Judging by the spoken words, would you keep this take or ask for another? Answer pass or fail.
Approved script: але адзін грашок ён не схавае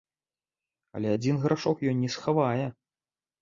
pass